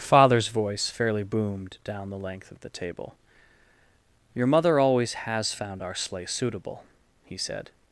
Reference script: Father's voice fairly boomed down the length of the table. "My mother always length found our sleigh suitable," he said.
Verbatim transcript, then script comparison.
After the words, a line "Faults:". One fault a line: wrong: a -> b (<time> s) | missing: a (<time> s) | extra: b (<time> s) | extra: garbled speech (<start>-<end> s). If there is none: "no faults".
Father's voice fairly boomed down the length of the table. "Your mother always has found our sleigh suitable," he said.
Faults:
wrong: My -> Your (4.3 s)
wrong: length -> has (5.1 s)